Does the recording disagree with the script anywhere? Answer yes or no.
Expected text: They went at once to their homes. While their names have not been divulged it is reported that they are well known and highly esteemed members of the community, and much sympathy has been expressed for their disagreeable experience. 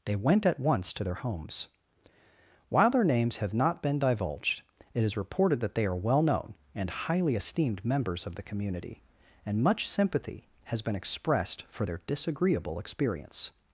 no